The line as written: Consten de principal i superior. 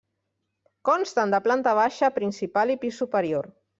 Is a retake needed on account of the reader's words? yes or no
yes